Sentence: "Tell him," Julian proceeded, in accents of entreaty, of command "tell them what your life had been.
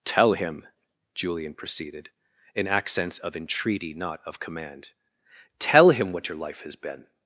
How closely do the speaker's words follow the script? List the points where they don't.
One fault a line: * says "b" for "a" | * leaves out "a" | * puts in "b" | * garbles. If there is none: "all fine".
* puts in "not"
* says "him" for "them"
* says "has" for "had"